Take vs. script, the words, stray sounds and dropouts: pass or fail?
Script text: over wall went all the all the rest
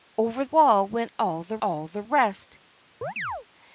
fail